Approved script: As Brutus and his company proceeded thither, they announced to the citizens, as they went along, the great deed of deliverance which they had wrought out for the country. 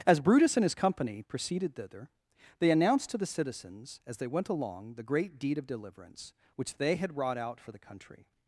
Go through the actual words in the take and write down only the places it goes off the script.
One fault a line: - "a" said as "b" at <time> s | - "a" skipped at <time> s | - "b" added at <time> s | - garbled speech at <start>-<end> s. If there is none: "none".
none